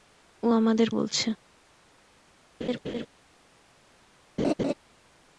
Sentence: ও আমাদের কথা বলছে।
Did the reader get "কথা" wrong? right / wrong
wrong